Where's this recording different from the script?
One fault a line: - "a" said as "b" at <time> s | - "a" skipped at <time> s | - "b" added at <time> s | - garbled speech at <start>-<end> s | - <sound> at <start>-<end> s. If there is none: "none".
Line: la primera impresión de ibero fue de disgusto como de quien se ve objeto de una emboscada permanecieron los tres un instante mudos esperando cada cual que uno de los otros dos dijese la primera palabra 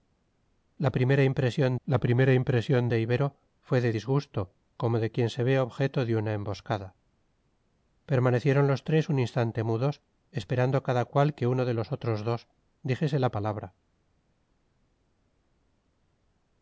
- "la primera impresión" added at 1.8 s
- "primera" skipped at 13.3 s